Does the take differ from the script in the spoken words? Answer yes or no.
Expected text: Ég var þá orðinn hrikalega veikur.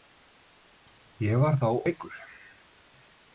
yes